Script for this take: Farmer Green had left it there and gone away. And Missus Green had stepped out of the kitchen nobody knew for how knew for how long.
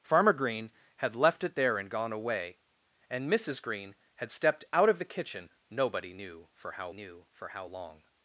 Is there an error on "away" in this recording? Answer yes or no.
no